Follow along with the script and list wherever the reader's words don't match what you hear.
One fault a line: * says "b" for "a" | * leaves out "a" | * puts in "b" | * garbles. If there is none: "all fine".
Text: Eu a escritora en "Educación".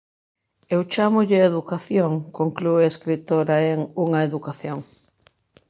* puts in "chámolle educación conclúe"
* puts in "Unha"